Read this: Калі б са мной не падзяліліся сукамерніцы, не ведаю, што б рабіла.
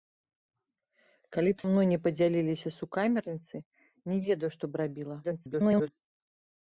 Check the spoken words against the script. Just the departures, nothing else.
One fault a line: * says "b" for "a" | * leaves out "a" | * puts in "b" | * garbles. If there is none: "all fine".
* leaves out "са"
* garbles